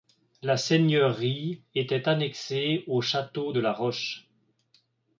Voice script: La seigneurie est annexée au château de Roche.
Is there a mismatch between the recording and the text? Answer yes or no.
yes